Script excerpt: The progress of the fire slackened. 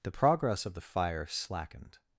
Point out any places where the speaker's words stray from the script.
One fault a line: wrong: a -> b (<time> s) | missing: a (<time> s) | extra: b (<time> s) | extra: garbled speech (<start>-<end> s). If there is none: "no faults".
no faults